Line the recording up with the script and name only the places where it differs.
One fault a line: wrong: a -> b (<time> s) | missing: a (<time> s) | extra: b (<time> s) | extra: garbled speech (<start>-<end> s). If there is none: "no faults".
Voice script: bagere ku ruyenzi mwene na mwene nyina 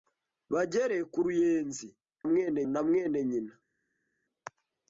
no faults